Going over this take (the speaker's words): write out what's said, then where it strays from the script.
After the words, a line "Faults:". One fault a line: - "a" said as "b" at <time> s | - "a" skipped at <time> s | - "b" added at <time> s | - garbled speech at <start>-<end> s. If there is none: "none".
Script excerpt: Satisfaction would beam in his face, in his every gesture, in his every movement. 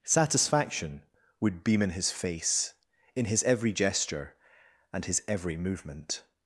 Satisfaction would beam in his face, in his every gesture, and his every movement.
Faults:
- "in" said as "and" at 4.9 s